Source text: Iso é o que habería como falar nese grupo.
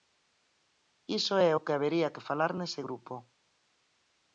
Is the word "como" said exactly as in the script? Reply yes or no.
no